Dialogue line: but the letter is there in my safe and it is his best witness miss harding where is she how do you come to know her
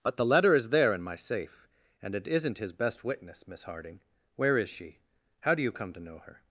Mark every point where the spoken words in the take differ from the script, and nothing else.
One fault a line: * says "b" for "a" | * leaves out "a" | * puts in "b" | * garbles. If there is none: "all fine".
* says "isn't" for "is"